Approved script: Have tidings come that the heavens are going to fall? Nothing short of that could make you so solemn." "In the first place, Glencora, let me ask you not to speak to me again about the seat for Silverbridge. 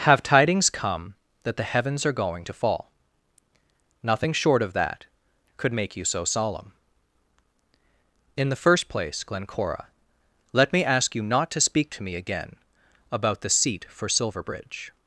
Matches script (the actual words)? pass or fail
pass